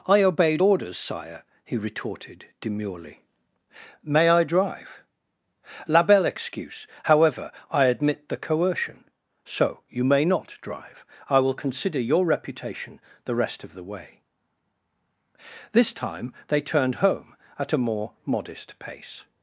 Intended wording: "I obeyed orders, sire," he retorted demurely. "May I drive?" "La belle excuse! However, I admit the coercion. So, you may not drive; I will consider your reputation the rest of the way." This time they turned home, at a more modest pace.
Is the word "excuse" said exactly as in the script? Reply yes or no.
yes